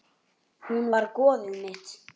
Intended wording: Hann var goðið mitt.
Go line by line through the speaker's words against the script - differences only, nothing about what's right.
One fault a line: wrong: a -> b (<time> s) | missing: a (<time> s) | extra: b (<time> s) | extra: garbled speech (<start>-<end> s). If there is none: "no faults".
wrong: Hann -> Hún (0.7 s)